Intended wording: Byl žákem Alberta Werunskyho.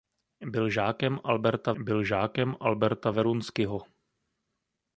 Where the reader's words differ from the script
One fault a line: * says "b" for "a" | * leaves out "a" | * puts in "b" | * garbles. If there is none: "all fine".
* puts in "byl žákem Alberta"